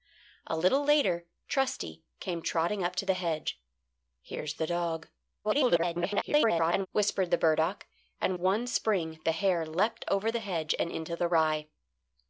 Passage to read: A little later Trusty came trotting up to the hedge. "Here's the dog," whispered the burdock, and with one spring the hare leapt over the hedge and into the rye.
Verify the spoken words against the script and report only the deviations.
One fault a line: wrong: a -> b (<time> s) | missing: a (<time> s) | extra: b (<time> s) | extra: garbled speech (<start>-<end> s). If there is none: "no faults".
extra: garbled speech (5.4-6.9 s)
missing: with (8.4 s)